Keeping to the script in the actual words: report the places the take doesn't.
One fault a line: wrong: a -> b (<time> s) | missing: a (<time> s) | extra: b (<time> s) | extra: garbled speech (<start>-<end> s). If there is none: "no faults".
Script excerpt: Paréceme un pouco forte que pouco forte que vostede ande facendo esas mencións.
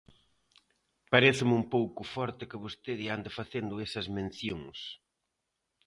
missing: pouco forte que (2.6 s)